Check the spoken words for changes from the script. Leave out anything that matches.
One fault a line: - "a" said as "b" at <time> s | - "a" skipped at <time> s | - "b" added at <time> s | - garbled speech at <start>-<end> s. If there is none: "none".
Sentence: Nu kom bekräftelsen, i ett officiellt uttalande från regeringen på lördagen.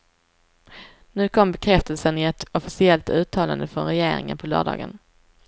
none